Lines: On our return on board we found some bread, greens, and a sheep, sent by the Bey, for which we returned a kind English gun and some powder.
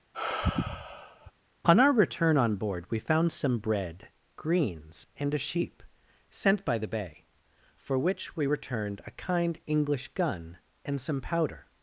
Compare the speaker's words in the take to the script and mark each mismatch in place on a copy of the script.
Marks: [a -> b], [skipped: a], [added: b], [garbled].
On our return on board we found some bread, greens, and a sheep, sent by the Bey, for which we returned a kind English gun and some powder.